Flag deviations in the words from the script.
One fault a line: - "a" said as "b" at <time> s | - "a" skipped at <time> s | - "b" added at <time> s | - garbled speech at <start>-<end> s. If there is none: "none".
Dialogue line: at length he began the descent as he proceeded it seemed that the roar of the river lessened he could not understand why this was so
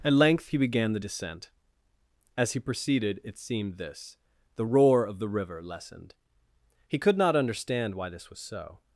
- "that" said as "this" at 3.8 s